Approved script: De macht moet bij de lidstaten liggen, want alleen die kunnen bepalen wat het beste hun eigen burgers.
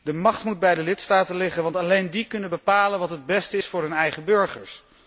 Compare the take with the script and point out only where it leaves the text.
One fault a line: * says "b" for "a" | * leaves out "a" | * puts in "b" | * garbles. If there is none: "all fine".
* puts in "is voor"